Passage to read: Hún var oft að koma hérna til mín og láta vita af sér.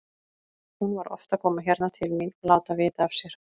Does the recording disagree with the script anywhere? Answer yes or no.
no